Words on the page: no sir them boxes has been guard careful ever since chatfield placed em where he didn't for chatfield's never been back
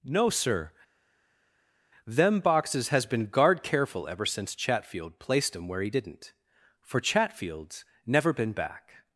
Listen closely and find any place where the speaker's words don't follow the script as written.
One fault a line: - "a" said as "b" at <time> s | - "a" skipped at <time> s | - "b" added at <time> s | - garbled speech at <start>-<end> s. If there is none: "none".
none